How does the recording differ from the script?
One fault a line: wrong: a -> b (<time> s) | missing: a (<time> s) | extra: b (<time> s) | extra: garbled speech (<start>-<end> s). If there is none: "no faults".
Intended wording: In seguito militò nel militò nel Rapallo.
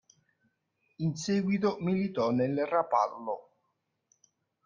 missing: militò nel (2.7 s)